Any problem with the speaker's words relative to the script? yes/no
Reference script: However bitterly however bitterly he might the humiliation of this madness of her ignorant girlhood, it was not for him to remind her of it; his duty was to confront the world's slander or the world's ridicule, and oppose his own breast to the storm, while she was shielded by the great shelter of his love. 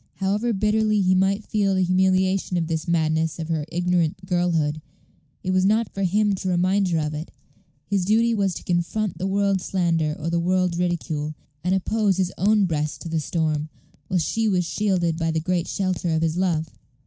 yes